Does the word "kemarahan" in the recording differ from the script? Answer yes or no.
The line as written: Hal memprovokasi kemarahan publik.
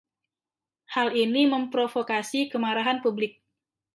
no